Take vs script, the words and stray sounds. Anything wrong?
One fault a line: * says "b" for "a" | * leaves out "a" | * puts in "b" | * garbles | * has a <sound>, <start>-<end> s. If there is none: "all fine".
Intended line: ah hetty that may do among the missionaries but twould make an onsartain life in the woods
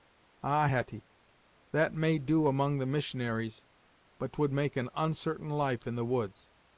all fine